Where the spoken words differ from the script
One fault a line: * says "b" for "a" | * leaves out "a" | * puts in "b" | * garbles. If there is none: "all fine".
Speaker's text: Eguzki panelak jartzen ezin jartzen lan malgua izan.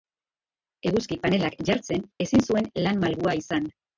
* says "zuen" for "jartzen"